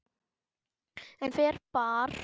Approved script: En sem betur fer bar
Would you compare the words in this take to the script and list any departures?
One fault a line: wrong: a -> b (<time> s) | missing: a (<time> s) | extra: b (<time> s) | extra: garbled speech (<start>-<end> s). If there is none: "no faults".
missing: sem betur (1.3 s)